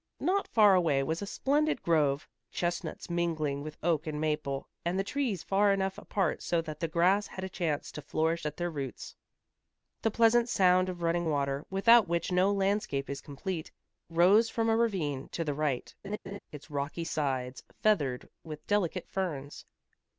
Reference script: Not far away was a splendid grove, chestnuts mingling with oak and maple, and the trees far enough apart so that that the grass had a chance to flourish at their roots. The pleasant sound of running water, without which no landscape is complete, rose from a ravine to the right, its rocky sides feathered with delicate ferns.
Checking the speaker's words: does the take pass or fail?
fail